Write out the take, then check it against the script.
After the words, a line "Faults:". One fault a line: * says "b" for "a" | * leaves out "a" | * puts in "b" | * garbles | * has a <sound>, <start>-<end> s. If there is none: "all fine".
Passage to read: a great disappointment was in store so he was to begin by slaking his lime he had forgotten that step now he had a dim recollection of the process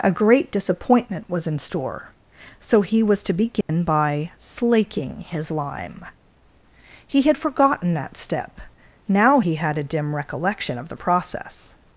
a great disappointment was in store so he was to begin by slaking his lime he had forgotten that step now he had a dim recollection of the process
Faults:
* has a dropout, 3.6-3.7 s